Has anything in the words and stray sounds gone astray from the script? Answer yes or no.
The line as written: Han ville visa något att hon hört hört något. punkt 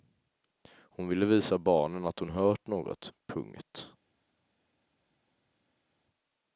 yes